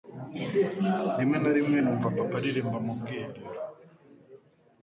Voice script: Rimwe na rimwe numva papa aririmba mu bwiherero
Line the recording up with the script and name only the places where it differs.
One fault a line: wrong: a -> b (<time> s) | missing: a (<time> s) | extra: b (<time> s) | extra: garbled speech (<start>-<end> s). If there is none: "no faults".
no faults